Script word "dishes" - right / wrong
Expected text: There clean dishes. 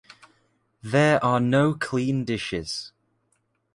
right